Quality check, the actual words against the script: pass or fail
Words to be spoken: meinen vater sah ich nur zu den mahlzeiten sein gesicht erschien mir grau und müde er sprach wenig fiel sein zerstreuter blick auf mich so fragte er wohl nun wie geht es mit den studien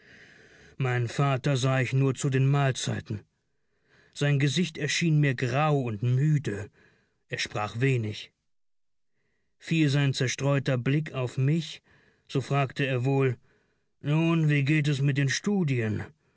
pass